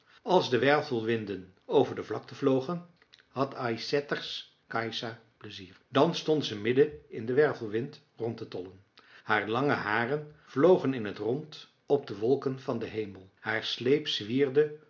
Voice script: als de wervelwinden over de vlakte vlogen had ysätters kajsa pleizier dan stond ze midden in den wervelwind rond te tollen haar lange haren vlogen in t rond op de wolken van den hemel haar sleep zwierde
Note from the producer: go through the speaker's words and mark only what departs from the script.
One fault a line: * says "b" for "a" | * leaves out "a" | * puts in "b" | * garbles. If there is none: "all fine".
all fine